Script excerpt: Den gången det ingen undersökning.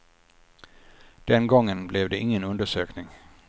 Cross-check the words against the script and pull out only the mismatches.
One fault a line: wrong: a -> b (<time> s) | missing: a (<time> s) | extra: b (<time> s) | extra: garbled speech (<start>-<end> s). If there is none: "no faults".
extra: blev (1.9 s)